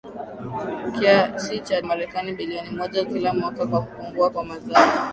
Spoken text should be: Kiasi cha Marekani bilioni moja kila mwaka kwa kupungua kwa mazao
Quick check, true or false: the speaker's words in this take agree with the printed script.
true